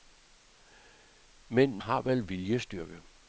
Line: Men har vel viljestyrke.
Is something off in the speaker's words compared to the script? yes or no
no